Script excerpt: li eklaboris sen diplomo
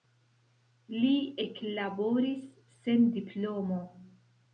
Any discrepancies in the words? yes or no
no